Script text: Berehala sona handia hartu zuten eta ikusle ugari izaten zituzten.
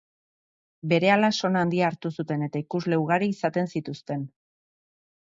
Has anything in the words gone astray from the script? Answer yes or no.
no